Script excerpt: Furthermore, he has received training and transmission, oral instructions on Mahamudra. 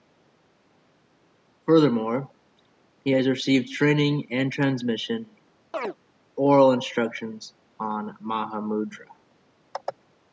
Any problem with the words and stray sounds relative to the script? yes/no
yes